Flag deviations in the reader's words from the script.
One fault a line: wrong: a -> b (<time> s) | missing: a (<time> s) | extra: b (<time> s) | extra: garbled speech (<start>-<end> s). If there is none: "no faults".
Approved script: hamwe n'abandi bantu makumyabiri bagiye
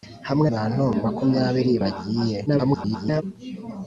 missing: n'abandi (0.5 s)
extra: garbled speech (2.5-3.2 s)